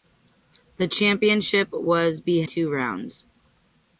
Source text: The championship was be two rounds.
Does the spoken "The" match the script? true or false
true